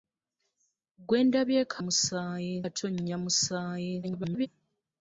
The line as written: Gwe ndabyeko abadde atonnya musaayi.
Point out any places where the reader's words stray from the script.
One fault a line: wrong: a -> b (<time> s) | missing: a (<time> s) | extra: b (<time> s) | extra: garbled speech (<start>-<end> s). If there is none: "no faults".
wrong: abadde -> musaayi (1.8 s)
extra: garbled speech (4.0-4.5 s)